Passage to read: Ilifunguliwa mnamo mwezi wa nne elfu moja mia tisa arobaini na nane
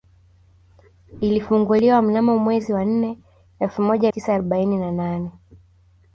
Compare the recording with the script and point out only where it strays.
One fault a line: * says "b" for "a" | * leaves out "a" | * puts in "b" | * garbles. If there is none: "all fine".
* leaves out "mia"